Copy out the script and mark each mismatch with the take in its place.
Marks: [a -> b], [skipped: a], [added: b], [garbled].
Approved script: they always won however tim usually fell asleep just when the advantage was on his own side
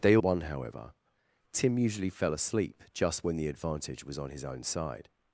they [skipped: always] won however tim usually fell asleep just when the advantage was on his own side